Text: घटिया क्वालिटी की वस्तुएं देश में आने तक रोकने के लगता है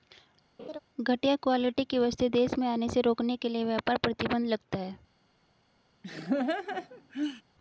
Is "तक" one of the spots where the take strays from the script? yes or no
yes